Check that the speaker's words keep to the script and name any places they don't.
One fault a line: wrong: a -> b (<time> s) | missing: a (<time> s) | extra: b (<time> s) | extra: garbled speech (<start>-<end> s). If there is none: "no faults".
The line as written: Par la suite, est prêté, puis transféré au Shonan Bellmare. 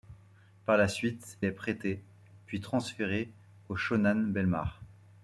no faults